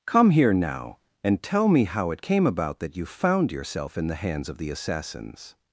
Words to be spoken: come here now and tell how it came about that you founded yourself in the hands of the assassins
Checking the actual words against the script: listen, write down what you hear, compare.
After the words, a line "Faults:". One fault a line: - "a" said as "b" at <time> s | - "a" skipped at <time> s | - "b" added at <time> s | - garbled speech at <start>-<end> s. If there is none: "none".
come here now and tell me how it came about that you found yourself in the hands of the assassins
Faults:
- "me" added at 1.7 s
- "founded" said as "found" at 3.0 s